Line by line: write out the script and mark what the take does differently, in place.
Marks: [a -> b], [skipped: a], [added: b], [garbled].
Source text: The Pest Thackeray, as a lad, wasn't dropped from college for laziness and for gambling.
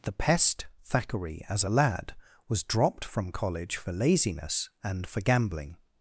The Pest Thackeray, as a lad, [wasn't -> was] dropped from college for laziness and for gambling.